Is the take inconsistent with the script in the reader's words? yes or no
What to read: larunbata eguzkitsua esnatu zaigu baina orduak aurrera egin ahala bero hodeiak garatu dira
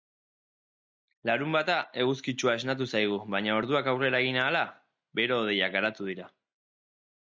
no